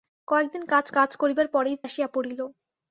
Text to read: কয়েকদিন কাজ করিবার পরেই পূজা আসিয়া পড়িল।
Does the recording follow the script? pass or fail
fail